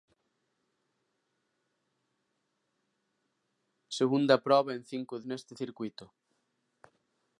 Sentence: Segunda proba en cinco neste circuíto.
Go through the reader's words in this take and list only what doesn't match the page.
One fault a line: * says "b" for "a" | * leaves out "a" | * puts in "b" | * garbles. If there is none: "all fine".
all fine